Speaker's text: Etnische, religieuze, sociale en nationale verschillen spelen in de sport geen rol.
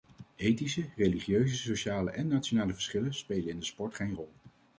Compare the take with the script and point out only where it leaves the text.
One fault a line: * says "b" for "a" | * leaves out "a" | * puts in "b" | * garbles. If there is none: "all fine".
all fine